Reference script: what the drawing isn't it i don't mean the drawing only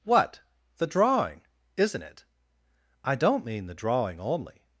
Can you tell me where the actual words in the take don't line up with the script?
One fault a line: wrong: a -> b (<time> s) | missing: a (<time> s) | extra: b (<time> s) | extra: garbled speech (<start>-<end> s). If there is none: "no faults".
no faults